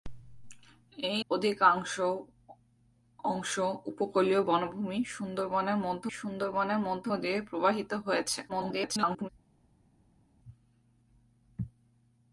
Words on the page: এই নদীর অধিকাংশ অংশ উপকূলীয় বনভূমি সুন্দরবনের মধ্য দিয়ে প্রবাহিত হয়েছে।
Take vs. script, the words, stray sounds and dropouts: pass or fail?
fail